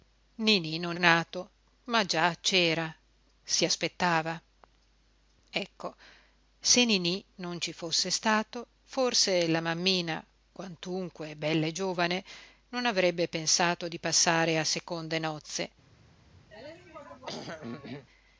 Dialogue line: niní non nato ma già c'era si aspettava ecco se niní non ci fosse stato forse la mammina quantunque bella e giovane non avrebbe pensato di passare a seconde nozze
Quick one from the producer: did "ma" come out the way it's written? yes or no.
yes